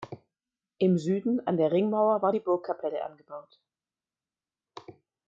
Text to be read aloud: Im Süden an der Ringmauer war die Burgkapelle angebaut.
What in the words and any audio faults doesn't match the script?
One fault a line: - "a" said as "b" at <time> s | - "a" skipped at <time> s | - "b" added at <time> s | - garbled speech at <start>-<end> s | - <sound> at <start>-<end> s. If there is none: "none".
none